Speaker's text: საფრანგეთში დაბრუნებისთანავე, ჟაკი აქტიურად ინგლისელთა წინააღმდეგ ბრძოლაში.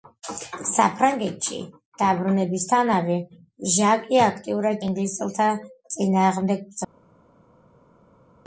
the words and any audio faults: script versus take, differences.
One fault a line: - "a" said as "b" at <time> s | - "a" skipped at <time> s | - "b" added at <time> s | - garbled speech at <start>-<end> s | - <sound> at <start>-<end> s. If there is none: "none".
none